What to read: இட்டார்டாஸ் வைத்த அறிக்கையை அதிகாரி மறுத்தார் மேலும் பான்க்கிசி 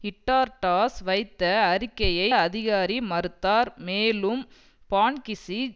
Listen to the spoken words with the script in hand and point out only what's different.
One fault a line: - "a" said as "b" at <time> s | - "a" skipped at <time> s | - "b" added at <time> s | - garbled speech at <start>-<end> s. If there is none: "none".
none